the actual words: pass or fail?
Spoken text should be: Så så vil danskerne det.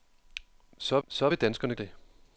pass